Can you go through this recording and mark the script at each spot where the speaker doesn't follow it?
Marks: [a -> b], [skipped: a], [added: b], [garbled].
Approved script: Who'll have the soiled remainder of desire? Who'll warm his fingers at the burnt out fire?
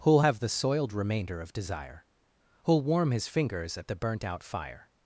Who'll have the soiled remainder of desire? Who'll warm his fingers at the burnt out fire?